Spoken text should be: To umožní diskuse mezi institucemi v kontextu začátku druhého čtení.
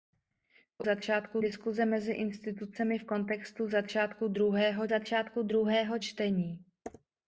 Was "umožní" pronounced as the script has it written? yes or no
no